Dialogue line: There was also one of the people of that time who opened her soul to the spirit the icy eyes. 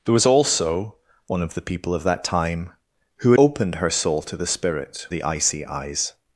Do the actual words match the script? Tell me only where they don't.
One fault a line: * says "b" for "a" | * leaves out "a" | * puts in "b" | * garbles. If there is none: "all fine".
all fine